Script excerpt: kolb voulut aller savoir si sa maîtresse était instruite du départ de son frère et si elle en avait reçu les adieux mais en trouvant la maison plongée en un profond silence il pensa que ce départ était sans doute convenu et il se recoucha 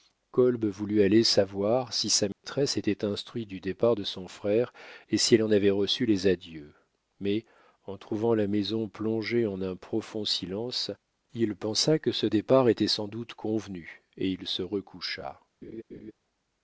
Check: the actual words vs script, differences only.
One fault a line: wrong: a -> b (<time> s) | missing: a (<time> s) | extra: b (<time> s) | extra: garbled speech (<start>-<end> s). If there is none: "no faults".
no faults